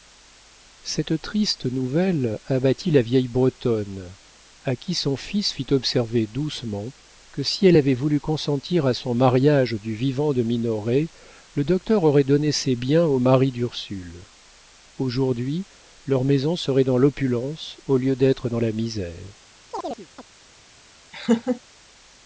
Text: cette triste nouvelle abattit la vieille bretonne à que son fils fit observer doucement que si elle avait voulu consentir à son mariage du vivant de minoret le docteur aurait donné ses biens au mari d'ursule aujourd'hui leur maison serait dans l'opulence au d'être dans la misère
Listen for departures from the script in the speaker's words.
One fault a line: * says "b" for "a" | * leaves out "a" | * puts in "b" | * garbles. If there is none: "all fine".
* says "qui" for "que"
* puts in "lieu"